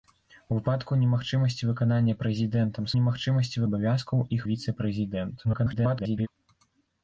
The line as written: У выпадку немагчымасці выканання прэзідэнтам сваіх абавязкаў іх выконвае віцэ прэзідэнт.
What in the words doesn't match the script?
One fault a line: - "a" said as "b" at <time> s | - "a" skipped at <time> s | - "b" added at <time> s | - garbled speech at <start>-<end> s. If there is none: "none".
- "сваіх" said as "немагчымасці" at 3.0 s
- "выконвае" skipped at 4.5 s
- garbled speech at 5.4-6.3 s